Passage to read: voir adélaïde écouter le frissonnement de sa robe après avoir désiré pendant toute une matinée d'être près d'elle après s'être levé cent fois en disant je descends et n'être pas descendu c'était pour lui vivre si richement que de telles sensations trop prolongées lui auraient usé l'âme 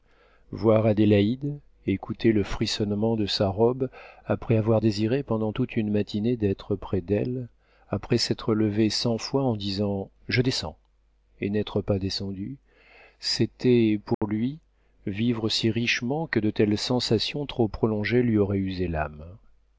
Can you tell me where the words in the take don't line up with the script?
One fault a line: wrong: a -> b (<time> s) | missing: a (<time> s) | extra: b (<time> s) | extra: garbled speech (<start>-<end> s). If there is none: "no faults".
no faults